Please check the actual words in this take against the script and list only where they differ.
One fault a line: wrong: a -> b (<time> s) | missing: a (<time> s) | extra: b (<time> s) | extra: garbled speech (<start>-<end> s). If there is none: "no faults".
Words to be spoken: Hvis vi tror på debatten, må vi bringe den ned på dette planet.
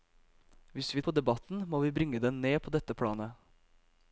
missing: tror (1.0 s)